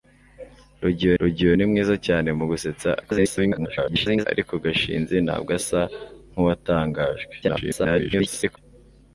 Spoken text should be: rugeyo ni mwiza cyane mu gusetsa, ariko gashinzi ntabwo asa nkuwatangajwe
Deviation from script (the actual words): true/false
true